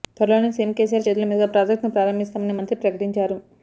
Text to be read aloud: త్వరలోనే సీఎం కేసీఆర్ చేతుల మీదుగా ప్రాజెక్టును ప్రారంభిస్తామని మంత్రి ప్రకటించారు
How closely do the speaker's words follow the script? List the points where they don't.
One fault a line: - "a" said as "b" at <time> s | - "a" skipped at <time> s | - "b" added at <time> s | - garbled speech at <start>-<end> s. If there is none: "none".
none